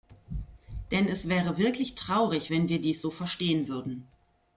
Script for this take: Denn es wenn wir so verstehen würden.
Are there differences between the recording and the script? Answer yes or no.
yes